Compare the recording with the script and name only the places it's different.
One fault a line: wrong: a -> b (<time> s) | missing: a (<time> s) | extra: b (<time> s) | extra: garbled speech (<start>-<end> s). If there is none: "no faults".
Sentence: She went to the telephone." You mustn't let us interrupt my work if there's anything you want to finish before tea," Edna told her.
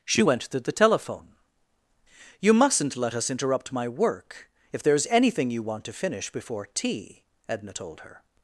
no faults